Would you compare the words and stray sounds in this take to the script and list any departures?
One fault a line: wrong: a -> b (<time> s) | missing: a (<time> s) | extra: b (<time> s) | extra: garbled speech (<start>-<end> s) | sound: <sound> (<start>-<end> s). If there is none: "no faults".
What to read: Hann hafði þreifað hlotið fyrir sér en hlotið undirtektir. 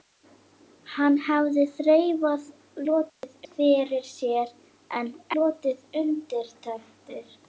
sound: dropout (3.1-3.2 s)